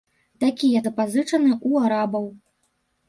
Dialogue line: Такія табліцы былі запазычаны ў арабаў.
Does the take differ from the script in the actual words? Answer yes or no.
yes